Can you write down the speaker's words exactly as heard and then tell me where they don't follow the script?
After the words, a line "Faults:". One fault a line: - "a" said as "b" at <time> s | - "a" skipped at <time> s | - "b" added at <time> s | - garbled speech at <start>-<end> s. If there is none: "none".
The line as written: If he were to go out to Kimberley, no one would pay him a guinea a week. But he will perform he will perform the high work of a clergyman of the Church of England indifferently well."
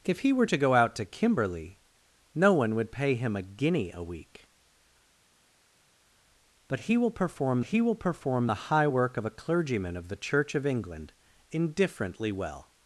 If he were to go out to Kimberley, no one would pay him a guinea a week. But he will perform he will perform the high work of a clergyman of the Church of England indifferently well."
Faults:
none